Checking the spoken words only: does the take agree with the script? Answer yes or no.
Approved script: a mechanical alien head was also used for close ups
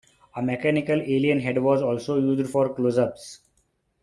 yes